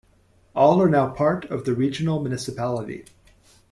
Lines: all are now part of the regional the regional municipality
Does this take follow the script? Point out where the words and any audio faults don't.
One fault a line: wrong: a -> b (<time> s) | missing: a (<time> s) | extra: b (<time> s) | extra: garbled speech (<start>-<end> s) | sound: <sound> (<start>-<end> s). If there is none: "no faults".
missing: the regional (2.2 s)